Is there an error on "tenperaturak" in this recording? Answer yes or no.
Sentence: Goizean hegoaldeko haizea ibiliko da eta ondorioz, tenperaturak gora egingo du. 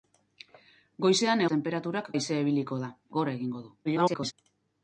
yes